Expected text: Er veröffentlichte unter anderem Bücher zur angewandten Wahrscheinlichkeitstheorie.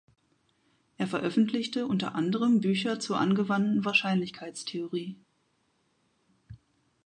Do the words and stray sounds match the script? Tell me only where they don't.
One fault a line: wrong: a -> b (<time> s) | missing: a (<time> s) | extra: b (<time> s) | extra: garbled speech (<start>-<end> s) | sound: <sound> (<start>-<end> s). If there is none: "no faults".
no faults